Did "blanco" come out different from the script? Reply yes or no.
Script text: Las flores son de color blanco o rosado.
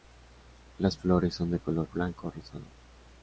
no